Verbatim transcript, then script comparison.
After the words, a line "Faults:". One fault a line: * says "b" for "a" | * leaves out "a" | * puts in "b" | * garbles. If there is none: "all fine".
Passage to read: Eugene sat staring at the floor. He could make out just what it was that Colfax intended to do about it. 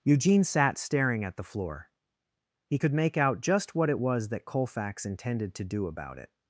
Eugene sat staring at the floor. He could make out just what it was that Colfax intended to do about it.
Faults:
all fine